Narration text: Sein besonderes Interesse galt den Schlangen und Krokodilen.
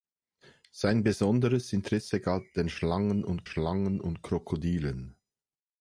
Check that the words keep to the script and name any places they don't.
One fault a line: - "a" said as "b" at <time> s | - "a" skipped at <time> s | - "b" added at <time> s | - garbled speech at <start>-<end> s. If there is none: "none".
- "Schlangen und" added at 3.4 s